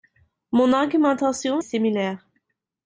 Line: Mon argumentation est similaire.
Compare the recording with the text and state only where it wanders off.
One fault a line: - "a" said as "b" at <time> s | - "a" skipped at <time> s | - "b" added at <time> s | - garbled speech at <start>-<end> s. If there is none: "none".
- "est" skipped at 1.6 s